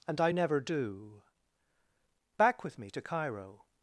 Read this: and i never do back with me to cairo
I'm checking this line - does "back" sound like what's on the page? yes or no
yes